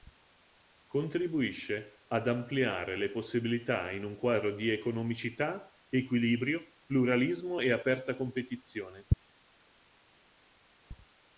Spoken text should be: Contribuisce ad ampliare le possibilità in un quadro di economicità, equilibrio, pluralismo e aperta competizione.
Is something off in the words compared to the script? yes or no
no